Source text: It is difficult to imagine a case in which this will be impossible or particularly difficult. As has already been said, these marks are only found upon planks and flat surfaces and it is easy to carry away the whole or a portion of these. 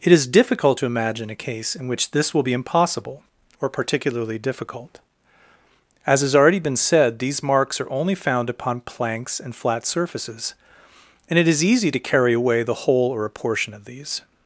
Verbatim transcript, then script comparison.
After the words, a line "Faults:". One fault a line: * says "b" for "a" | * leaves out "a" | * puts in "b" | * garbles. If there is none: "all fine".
It is difficult to imagine a case in which this will be impossible or particularly difficult. As has already been said, these marks are only found upon planks and flat surfaces and it is easy to carry away the whole or a portion of these.
Faults:
all fine